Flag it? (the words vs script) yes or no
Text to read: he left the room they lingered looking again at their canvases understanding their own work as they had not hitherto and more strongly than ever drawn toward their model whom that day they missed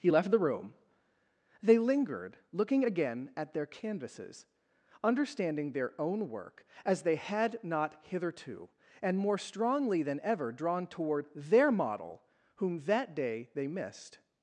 no